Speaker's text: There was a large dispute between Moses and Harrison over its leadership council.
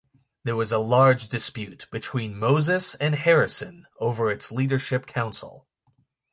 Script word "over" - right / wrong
right